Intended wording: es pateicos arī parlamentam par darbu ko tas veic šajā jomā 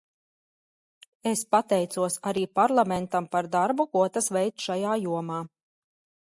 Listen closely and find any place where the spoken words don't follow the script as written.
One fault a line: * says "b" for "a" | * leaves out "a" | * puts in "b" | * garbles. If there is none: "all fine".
all fine